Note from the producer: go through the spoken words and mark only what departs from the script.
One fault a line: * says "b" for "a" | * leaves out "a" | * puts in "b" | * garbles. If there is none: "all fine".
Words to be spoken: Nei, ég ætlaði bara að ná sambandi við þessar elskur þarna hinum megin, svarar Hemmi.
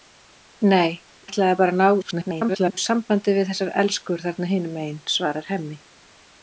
* leaves out "ég"
* garbles